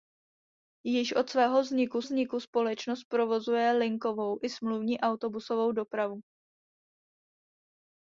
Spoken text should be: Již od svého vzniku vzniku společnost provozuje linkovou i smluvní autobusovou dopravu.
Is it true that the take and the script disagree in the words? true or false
false